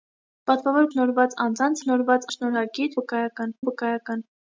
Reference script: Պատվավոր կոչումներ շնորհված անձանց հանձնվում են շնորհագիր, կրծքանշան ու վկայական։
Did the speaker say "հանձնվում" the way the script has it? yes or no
no